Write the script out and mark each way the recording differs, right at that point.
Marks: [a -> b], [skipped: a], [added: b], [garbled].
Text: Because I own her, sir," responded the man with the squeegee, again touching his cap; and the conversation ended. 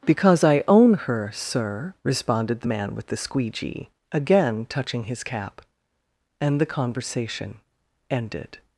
Because I own her, sir," responded the man with the squeegee, again touching his cap; and the conversation ended.